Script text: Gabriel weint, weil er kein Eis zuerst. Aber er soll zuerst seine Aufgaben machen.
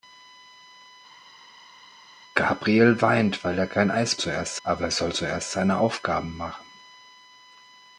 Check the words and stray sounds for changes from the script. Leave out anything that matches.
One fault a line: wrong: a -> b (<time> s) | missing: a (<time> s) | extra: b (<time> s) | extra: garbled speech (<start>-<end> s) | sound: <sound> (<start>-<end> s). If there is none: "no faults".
no faults